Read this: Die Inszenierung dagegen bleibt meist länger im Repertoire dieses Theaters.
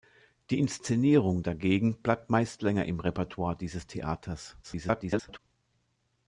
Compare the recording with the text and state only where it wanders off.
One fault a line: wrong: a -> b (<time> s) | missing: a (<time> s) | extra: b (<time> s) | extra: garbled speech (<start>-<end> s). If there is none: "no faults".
extra: garbled speech (4.6-5.4 s)